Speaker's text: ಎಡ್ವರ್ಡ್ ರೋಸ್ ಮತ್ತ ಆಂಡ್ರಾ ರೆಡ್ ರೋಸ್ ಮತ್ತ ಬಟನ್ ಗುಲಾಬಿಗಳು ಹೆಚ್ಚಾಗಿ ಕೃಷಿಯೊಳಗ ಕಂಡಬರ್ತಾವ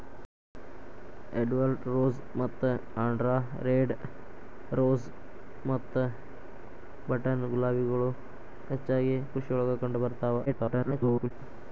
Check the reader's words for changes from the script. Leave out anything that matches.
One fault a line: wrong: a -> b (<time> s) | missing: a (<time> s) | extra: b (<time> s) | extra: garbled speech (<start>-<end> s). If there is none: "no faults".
extra: garbled speech (10.5-11.3 s)